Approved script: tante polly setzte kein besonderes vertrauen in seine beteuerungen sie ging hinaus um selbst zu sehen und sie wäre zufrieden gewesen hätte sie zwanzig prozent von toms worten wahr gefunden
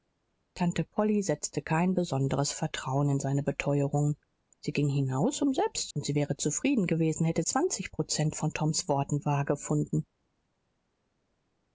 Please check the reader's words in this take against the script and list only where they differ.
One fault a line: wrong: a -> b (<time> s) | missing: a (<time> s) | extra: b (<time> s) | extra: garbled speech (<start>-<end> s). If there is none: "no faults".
missing: zu sehen (5.9 s)
missing: sie (7.4 s)